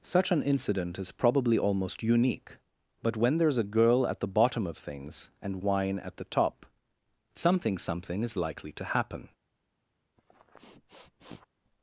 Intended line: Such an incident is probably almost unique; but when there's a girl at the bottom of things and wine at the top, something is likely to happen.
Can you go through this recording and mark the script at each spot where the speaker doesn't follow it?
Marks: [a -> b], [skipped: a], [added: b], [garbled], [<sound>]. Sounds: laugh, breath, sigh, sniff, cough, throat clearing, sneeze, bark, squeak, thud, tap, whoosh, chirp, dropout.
Such an incident is probably almost unique; but when there's a girl at the bottom of things and wine at the top, something [added: something] is likely to happen. [sniff]